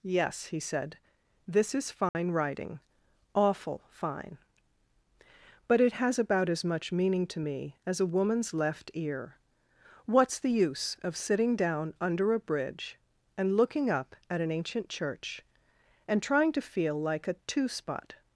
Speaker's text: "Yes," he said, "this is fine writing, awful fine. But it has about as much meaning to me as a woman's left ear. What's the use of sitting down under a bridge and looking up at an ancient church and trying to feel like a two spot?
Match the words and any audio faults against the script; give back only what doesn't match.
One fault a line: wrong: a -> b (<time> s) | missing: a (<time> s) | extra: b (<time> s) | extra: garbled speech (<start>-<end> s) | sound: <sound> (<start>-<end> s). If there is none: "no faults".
sound: dropout (2.1-2.1 s)